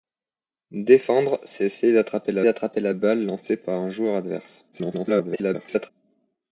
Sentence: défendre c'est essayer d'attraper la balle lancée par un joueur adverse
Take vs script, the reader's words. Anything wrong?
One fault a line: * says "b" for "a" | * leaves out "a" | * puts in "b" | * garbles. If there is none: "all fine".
* puts in "d'attraper la"
* garbles